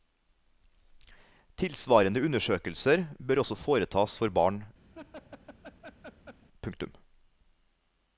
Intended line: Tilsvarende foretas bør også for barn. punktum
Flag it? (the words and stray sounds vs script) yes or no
yes